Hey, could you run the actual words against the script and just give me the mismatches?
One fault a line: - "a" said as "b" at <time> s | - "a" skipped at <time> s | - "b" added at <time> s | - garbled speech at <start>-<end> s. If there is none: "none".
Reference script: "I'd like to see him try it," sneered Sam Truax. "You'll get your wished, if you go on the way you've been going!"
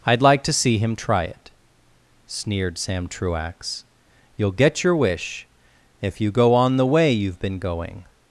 - "wished" said as "wish" at 5.0 s